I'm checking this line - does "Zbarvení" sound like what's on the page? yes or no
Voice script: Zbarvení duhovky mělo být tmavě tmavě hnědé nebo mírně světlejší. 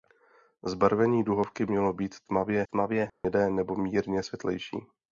yes